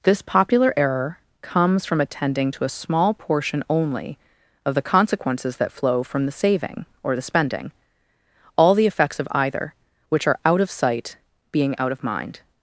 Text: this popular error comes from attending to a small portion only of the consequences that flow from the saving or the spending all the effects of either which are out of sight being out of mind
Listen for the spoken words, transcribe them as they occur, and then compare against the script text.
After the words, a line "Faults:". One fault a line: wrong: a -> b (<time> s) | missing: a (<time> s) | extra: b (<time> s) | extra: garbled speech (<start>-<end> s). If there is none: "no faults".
this popular error comes from attending to a small portion only of the consequences that flow from the saving or the spending all the effects of either which are out of sight being out of mind
Faults:
no faults